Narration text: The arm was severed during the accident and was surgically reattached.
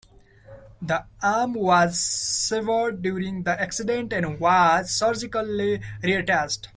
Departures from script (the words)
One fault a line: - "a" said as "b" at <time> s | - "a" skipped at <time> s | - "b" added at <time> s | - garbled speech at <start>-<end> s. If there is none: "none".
none